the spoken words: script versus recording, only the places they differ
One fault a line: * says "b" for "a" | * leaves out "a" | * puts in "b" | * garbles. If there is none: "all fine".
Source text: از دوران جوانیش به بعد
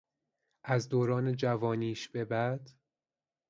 all fine